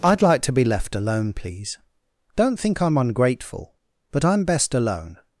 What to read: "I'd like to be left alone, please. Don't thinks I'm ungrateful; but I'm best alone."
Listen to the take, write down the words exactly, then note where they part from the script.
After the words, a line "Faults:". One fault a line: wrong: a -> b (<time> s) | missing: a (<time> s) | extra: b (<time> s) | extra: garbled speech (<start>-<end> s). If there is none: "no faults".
"I'd like to be left alone, please. Don't think I'm ungrateful; but I'm best alone."
Faults:
wrong: thinks -> think (2.6 s)